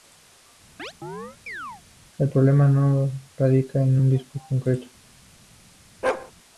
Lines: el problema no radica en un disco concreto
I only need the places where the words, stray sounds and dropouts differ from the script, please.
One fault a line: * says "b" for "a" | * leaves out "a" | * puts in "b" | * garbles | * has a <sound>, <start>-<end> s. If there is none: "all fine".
* has a chirp, 0.8-1.8 s
* has a bark, 6.0-6.3 s